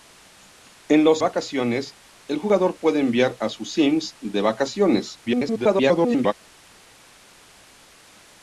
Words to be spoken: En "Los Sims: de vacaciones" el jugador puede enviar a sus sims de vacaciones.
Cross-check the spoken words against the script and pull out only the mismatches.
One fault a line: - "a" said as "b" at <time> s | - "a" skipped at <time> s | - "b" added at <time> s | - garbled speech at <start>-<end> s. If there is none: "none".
- "Sims de" skipped at 1.2 s
- garbled speech at 5.3-6.3 s